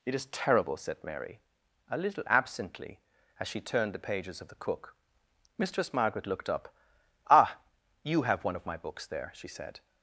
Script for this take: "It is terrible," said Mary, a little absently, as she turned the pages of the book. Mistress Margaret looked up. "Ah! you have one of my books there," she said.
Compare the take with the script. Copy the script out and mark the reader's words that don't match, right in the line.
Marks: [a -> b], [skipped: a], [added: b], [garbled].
"It is terrible," said Mary, a little absently, as she turned the pages of the [book. -> cook] Mistress Margaret looked up. "Ah! you have one of my books there," she said.